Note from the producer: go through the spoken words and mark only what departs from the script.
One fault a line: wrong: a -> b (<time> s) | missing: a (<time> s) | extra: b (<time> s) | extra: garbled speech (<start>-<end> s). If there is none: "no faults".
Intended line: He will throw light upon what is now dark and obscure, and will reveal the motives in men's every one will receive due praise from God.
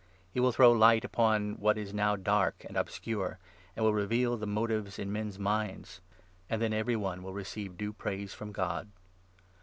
extra: minds and then (5.4 s)